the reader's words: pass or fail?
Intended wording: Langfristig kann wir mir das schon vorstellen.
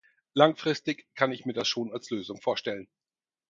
fail